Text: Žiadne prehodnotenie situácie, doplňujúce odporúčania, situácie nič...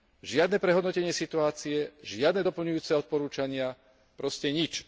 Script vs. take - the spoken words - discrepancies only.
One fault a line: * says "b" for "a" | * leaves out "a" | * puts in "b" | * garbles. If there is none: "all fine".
* puts in "žiadne"
* says "proste" for "situácie"